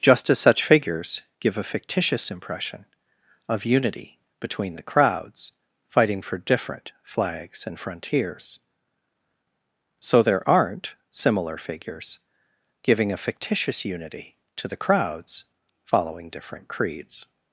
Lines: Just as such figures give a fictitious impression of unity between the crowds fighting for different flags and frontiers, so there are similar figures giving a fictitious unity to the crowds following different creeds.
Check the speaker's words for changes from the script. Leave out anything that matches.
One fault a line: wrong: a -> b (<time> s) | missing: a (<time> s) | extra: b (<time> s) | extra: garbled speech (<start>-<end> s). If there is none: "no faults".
wrong: are -> aren't (10.5 s)